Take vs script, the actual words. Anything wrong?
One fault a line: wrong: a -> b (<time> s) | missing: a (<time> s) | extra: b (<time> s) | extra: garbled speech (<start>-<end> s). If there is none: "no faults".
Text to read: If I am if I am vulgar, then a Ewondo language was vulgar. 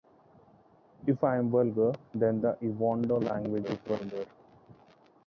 missing: if I am (1.5 s)
wrong: a -> the (2.4 s)
wrong: was -> is (3.6 s)